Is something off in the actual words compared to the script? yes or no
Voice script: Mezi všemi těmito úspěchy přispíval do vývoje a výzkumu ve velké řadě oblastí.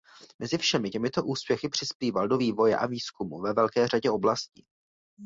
no